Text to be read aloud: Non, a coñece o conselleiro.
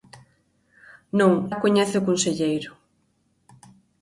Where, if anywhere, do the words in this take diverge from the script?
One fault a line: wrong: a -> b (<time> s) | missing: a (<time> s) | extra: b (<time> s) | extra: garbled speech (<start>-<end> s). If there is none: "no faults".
no faults